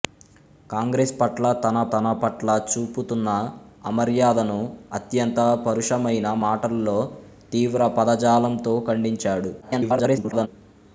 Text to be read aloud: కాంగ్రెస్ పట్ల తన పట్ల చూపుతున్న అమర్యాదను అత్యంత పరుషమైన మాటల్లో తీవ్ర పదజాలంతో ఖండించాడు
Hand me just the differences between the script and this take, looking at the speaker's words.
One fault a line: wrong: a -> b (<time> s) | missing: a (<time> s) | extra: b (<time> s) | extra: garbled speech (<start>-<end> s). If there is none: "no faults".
extra: తన (1.9 s)
extra: garbled speech (9.6-10.5 s)